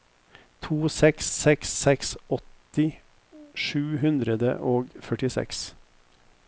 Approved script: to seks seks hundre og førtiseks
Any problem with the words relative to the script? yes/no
yes